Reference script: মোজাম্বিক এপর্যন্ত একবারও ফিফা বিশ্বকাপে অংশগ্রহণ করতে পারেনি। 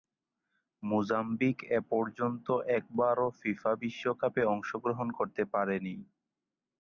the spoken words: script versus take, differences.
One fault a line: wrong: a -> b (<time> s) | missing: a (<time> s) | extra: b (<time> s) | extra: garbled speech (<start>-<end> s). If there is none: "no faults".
no faults